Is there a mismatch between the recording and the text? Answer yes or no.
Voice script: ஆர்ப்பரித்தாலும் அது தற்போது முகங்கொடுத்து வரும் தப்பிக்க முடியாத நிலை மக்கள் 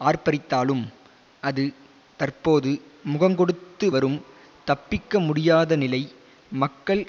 no